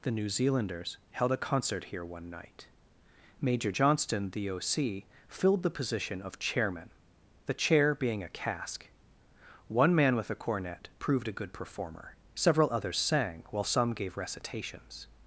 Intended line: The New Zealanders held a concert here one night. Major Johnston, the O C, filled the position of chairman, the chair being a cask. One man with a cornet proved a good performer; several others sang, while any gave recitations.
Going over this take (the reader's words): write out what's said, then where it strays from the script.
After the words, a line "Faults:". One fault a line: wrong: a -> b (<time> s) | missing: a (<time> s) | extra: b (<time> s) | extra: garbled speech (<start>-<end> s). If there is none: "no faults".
The New Zealanders held a concert here one night. Major Johnston, the O C, filled the position of chairman, the chair being a cask. One man with a cornet proved a good performer; several others sang, while some gave recitations.
Faults:
wrong: any -> some (13.6 s)